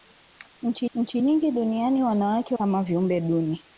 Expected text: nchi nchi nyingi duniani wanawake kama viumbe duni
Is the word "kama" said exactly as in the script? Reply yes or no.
yes